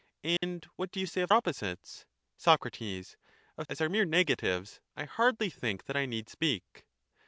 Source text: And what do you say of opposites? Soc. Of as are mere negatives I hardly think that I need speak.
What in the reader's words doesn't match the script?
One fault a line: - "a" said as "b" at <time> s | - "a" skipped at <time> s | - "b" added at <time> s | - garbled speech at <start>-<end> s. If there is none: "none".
none